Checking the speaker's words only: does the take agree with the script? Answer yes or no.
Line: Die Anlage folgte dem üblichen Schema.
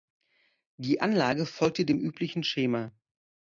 yes